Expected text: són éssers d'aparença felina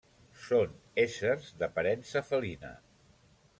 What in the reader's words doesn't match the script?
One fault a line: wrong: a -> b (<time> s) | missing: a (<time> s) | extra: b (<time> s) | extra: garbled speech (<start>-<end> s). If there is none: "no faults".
no faults